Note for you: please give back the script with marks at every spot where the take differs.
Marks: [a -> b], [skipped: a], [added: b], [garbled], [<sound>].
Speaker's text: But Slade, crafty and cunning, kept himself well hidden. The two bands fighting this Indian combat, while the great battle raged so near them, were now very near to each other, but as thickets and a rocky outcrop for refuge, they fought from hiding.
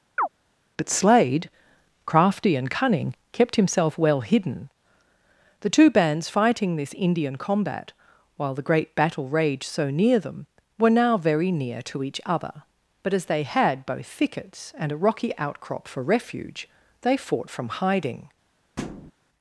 [chirp] But Slade, crafty and cunning, kept himself well hidden. The two bands fighting this Indian combat, while the great battle raged so near them, were now very near to each other, but as [added: they had both] thickets and a rocky outcrop for refuge, they fought from hiding. [thud]